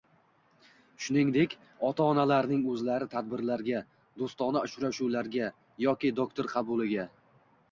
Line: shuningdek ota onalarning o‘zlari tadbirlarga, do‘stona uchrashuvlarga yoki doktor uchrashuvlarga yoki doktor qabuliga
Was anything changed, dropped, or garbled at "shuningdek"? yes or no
no